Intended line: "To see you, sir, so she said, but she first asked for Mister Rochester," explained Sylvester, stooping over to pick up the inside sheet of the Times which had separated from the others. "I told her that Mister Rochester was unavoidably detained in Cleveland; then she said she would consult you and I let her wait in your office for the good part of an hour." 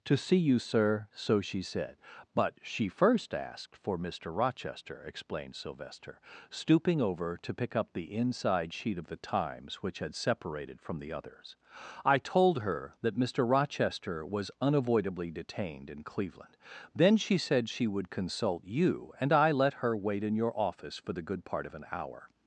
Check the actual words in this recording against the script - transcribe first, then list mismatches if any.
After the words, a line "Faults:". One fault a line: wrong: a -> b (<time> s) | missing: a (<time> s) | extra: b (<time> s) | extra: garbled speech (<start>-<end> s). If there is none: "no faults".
"To see you, sir, so she said, but she first asked for Mister Rochester," explained Sylvester, stooping over to pick up the inside sheet of the Times which had separated from the others. "I told her that Mister Rochester was unavoidably detained in Cleveland; then she said she would consult you and I let her wait in your office for the good part of an hour."
Faults:
no faults